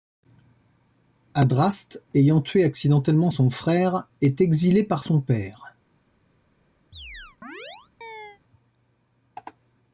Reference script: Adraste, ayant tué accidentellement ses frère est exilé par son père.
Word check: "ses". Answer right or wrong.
wrong